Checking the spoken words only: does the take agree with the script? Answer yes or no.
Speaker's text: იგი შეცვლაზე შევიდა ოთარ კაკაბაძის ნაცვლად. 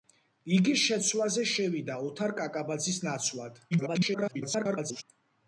no